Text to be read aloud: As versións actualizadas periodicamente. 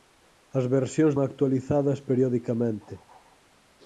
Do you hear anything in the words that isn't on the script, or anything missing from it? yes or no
no